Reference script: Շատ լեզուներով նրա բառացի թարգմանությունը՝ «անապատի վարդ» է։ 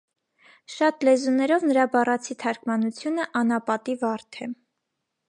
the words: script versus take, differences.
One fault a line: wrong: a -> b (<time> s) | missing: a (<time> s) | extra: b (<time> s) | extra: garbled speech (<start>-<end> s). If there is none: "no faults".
no faults